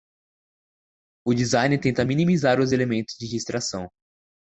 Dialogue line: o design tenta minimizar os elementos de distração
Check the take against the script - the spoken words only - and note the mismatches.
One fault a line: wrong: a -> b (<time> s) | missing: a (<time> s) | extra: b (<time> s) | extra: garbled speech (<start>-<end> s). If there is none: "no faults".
no faults